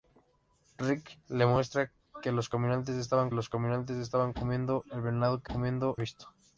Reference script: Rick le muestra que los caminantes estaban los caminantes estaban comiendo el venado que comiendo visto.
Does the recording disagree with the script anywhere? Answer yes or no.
no